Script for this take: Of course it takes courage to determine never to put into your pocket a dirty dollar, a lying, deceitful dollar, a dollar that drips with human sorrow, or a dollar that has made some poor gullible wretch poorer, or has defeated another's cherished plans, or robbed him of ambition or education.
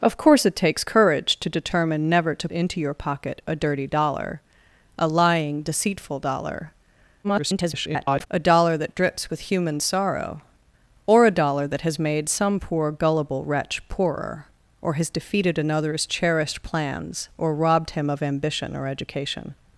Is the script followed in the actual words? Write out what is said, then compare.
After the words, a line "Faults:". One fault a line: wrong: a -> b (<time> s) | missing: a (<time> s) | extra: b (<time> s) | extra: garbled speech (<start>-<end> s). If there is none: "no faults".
Of course it takes courage to determine never to into your pocket a dirty dollar, a lying, deceitful dollar, [garbled] a dollar that drips with human sorrow, or a dollar that has made some poor gullible wretch poorer, or has defeated another's cherished plans, or robbed him of ambition or education.
Faults:
missing: put (2.5 s)
extra: garbled speech (7.2-8.3 s)